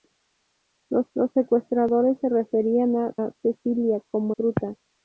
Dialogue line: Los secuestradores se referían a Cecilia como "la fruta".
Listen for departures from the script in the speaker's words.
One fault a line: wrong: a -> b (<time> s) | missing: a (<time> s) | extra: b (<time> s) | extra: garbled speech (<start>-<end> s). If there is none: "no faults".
extra: los (1.1 s)
extra: a (3.1 s)
missing: la (4.3 s)